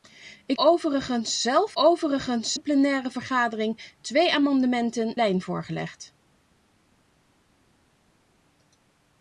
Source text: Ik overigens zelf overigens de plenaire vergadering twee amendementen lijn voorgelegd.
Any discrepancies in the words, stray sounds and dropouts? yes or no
no